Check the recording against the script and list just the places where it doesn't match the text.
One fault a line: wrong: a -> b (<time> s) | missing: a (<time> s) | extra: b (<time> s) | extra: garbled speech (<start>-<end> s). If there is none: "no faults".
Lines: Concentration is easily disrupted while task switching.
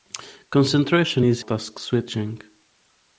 missing: easily disrupted while (1.4 s)